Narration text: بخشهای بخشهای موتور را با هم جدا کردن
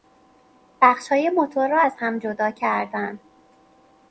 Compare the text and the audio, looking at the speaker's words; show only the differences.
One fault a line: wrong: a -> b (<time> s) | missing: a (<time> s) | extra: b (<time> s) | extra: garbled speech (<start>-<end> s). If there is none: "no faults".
missing: بخشهای (1.3 s)
wrong: با -> از (1.8 s)